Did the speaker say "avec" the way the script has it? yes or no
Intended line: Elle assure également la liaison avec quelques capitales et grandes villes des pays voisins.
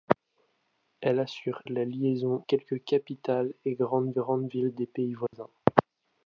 no